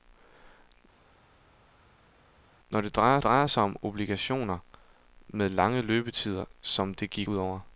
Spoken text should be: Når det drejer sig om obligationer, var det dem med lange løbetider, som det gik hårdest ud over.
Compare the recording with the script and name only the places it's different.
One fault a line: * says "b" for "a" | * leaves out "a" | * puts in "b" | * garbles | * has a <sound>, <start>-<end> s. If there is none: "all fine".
* puts in "drejer"
* leaves out "var det dem"
* leaves out "hårdest"